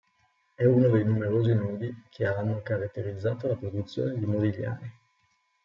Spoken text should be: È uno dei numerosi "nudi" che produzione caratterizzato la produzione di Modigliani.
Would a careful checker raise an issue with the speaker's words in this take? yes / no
yes